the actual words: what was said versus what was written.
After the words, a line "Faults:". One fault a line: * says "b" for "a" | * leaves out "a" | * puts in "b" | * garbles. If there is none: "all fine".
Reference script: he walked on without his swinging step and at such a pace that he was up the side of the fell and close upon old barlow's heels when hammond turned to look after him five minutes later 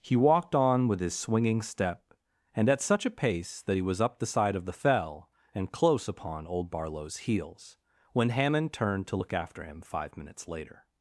he walked on with his swinging step and at such a pace that he was up the side of the fell and close upon old barlow's heels when hammond turned to look after him five minutes later
Faults:
* says "with" for "without"